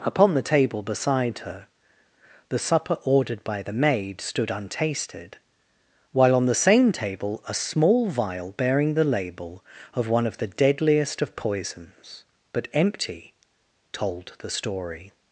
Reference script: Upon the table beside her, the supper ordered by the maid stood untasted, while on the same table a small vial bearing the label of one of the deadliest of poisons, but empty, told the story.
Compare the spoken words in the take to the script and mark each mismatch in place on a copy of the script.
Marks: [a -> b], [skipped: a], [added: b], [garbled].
Upon the table beside her, the supper ordered by the maid stood untasted, while on the same table a small vial bearing the label of one of the deadliest of poisons, but empty, told the story.